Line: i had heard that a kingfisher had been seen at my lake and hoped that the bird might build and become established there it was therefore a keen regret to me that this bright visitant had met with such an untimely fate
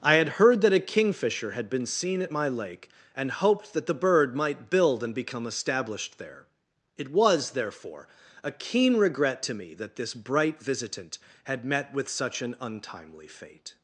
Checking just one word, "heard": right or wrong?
right